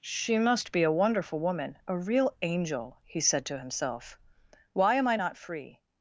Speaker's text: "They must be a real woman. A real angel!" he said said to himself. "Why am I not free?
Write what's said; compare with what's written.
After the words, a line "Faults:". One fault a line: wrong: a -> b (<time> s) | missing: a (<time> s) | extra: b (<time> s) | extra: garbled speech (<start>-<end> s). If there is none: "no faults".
"She must be a wonderful woman. A real angel!" he said to himself. "Why am I not free?
Faults:
wrong: They -> She (0.0 s)
wrong: real -> wonderful (0.9 s)
missing: said (3.4 s)